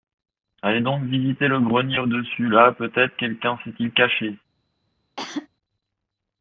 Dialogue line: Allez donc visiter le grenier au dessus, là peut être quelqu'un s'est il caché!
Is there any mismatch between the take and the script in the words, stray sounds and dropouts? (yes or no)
yes